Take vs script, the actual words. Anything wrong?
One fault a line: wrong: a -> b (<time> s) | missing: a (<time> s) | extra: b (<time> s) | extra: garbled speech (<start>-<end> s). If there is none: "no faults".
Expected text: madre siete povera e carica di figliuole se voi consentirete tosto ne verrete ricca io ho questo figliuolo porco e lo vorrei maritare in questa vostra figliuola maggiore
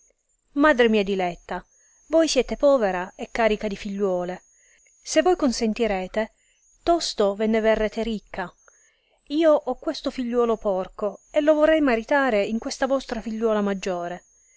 extra: mia diletta voi (0.9 s)
extra: ve (7.3 s)